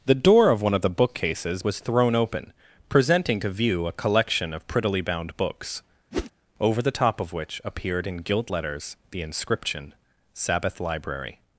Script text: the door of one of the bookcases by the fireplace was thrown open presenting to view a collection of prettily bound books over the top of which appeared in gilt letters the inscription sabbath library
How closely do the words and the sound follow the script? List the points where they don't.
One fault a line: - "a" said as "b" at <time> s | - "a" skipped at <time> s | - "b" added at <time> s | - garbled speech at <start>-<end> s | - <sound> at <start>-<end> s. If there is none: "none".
- "by the fireplace" skipped at 1.6 s
- whoosh at 6.1-6.3 s